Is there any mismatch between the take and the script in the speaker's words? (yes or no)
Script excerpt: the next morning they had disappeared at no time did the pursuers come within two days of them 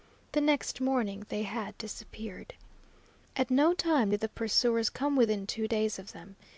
no